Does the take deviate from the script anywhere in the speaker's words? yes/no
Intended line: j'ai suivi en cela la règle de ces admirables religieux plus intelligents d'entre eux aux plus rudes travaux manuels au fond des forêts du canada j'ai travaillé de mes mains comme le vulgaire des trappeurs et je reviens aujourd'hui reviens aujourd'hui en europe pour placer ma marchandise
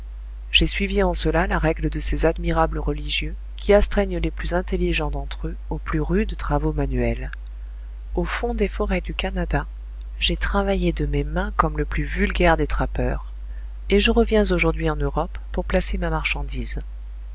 yes